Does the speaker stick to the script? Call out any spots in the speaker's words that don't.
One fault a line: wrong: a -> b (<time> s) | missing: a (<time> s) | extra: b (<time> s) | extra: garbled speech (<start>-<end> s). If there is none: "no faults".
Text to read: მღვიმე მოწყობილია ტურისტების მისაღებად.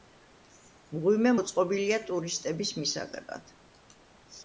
no faults